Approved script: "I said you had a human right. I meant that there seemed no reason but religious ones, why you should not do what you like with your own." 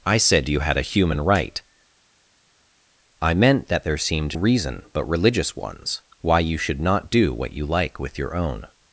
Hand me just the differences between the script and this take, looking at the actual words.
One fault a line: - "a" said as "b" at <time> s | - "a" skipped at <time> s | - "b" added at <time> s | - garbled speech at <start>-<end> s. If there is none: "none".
- "no" skipped at 4.4 s